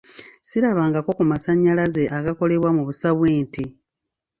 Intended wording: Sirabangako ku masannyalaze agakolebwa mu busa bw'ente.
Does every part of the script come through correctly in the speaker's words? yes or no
yes